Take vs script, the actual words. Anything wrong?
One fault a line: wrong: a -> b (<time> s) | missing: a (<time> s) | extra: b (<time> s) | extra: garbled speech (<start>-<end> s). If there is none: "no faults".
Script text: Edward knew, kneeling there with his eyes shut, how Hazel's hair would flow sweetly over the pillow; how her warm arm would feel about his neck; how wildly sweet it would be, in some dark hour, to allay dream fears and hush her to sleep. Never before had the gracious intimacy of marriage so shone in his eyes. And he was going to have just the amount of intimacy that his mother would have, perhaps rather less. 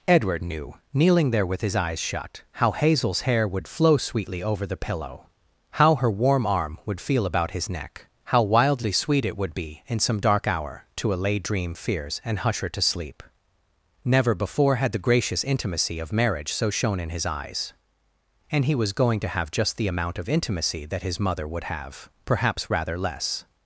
no faults